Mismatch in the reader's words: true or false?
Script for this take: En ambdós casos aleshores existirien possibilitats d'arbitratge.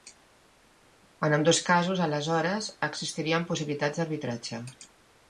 false